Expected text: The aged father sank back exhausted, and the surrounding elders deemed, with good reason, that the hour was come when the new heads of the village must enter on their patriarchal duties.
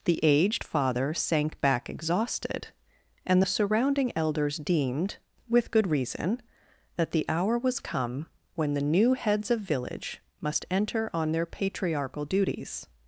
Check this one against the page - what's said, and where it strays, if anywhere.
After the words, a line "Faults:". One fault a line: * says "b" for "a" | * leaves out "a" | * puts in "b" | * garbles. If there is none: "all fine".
The aged father sank back exhausted, and the surrounding elders deemed, with good reason, that the hour was come when the new heads of village must enter on their patriarchal duties.
Faults:
* leaves out "the"